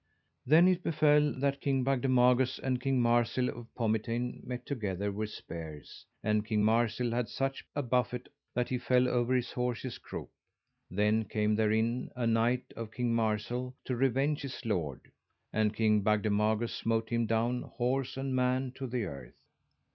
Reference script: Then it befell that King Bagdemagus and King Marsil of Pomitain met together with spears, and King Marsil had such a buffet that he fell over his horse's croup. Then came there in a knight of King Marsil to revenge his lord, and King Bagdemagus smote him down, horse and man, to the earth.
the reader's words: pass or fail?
pass